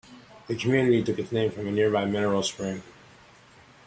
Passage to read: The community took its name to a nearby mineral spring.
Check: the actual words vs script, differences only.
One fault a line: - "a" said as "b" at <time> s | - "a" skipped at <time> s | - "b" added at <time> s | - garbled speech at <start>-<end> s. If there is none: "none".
- "to" said as "from" at 1.5 s